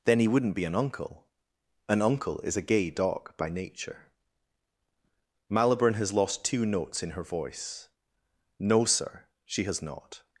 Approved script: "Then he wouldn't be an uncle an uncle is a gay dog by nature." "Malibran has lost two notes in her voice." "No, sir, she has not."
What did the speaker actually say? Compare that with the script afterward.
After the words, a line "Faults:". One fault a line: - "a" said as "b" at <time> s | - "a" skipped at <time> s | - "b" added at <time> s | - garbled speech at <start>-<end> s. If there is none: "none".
"Then he wouldn't be an uncle an uncle is a gay dog by nature." "Malibran has lost two notes in her voice." "No, sir, she has not."
Faults:
none